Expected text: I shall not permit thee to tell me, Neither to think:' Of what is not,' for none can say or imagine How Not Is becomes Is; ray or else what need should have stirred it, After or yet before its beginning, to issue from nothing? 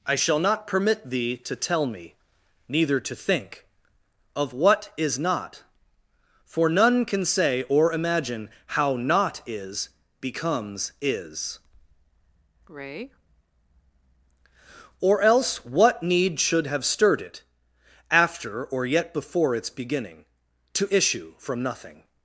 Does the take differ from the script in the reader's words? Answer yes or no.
no